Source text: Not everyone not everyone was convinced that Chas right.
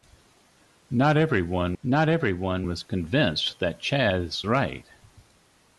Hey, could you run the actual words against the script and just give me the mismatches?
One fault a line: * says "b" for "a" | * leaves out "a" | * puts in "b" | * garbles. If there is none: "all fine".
all fine